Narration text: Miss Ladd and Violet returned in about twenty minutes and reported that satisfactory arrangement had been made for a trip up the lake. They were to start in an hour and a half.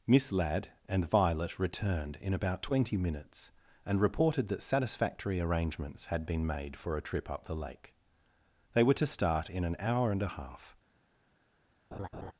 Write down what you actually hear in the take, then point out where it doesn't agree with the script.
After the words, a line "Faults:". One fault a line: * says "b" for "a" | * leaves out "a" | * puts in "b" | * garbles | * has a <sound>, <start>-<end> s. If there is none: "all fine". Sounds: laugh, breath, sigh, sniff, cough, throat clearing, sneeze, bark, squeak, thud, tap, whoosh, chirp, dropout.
Miss Ladd and Violet returned in about twenty minutes and reported that satisfactory arrangements had been made for a trip up the lake. They were to start in an hour and a half.
Faults:
* says "arrangements" for "arrangement"
* has a laugh, 11.9-12.3 s